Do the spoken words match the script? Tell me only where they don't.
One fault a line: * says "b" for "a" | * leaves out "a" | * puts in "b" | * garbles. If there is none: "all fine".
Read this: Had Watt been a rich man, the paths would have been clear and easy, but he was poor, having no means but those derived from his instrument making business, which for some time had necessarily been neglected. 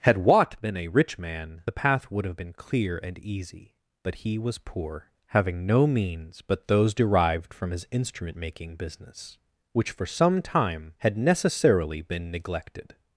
* says "path" for "paths"